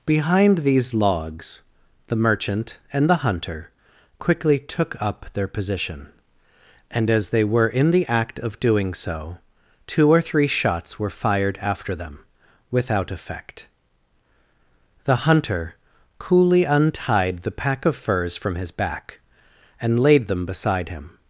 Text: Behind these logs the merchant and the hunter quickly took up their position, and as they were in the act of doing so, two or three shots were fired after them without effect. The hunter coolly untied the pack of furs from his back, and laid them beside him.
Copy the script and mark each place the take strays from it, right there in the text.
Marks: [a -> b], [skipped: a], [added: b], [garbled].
Behind these logs the merchant and the hunter quickly took up their position, and as they were in the act of doing so, two or three shots were fired after them without effect. The hunter coolly untied the pack of furs from his back, and laid them beside him.